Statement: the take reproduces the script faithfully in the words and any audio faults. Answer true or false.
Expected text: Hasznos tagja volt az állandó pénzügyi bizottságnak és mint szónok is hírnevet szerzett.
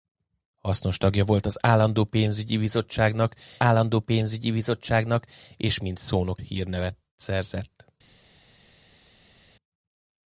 false